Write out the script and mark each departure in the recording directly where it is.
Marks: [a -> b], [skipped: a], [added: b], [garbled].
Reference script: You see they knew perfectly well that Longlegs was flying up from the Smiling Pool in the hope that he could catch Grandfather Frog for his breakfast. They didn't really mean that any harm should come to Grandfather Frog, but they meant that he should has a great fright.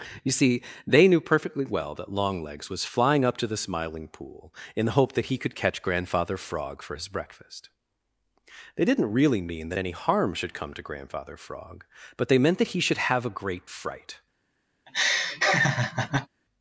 You see they knew perfectly well that Longlegs was flying up [from -> to] the Smiling Pool in the hope that he could catch Grandfather Frog for his breakfast. They didn't really mean that any harm should come to Grandfather Frog, but they meant that he should [has -> have] a great fright.